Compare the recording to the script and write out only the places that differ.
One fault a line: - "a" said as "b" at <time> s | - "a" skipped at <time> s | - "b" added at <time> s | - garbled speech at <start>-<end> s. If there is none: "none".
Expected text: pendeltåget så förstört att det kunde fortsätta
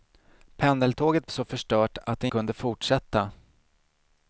none